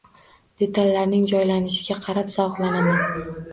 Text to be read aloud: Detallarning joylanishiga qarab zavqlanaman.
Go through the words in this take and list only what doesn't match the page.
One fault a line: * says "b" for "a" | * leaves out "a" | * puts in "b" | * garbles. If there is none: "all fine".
all fine